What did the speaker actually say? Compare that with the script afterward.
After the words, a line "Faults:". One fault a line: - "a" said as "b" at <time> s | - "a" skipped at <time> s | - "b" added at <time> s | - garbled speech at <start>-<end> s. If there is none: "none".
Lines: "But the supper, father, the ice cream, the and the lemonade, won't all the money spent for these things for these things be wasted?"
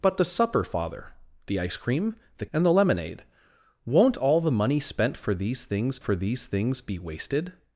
"But the supper, father, the ice cream, the and the lemonade, won't all the money spent for these things for these things be wasted?"
Faults:
none